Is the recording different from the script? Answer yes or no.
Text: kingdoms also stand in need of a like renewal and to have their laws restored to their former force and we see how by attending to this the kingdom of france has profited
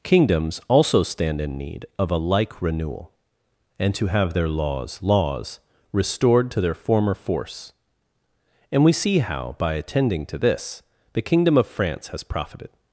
yes